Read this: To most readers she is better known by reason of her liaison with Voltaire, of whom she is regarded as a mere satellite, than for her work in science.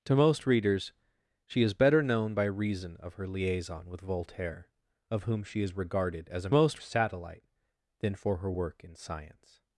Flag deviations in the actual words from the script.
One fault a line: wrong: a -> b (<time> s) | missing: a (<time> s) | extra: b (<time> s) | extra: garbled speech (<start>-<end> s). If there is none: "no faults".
wrong: mere -> most (6.5 s)